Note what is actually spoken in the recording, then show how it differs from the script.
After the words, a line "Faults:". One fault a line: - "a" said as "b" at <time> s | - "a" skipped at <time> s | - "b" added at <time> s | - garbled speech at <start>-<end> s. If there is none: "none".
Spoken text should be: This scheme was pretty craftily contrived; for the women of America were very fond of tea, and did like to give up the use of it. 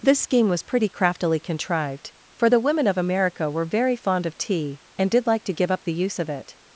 This scheme was pretty craftily contrived; for the women of America were very fond of tea, and did like to give up the use of it.
Faults:
none